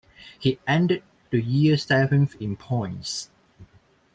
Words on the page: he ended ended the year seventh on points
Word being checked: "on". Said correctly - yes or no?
no